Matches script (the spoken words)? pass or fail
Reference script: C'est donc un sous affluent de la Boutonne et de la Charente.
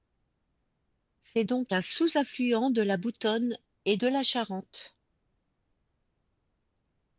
pass